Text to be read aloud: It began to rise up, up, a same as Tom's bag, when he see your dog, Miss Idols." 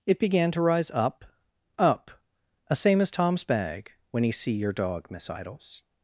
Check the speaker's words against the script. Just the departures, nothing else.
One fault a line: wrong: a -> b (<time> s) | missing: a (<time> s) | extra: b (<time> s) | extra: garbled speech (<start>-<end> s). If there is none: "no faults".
no faults